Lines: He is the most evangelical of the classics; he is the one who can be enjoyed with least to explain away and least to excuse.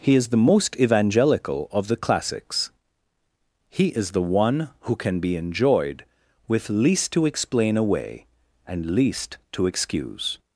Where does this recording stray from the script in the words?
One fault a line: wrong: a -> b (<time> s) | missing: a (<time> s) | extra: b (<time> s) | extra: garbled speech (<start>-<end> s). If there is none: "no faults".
no faults